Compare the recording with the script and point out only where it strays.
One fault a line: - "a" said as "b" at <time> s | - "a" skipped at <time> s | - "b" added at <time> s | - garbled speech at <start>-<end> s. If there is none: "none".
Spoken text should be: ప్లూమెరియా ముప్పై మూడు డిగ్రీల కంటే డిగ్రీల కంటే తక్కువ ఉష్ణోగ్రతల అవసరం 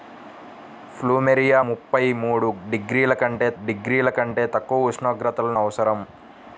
none